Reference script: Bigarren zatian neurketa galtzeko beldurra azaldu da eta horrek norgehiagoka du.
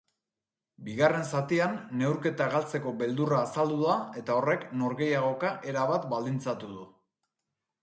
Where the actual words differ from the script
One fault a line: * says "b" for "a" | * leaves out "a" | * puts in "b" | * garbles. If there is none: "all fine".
* puts in "erabat baldintzatu"